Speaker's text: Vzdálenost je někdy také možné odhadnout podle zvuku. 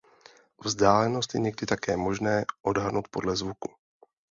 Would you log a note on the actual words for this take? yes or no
no